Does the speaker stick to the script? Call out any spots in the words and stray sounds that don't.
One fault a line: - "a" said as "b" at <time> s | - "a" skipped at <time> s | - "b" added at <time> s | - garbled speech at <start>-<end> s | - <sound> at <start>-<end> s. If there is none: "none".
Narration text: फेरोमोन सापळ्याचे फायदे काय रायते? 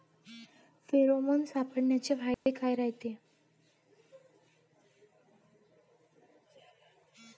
- dropout at 2.3-2.5 s